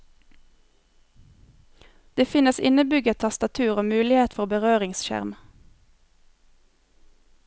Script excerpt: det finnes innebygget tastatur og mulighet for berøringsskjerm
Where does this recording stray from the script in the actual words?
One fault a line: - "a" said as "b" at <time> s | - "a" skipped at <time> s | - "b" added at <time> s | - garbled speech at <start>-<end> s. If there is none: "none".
none